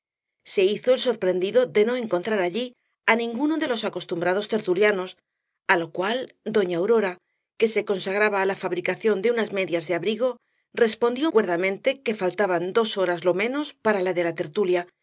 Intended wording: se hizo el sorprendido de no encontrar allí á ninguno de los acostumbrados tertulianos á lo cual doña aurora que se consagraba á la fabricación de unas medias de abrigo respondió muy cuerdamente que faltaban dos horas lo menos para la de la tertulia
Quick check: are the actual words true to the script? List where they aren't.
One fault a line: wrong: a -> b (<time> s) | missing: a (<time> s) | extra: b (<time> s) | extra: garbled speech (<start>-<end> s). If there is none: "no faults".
missing: muy (11.3 s)